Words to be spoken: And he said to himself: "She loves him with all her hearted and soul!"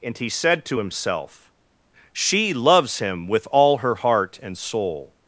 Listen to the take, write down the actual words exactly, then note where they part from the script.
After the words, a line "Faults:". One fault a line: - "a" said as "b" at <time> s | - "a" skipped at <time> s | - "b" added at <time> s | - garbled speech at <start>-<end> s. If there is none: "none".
And he said to himself: "She loves him with all her heart and soul!"
Faults:
- "hearted" said as "heart" at 3.9 s